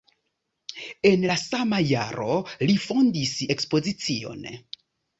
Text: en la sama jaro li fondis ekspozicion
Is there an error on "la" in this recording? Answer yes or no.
no